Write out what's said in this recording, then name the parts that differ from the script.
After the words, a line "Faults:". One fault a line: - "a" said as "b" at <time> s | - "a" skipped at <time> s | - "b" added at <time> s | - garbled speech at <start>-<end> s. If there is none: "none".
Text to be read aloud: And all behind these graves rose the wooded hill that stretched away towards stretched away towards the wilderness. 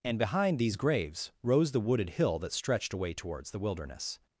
And behind these graves rose the wooded hill that stretched away towards the wilderness.
Faults:
- "all" skipped at 0.2 s
- "stretched away towards" skipped at 3.5 s